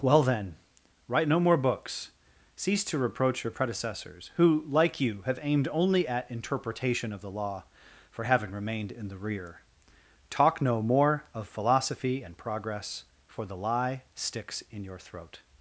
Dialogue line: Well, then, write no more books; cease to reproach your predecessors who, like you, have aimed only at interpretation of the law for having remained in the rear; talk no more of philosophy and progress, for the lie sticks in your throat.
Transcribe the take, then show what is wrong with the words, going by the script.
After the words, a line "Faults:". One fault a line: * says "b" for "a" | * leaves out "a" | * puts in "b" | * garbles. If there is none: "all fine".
Well, then, write no more books; cease to reproach your predecessors who, like you, have aimed only at interpretation of the law for having remained in the rear; talk no more of philosophy and progress, for the lie sticks in your throat.
Faults:
all fine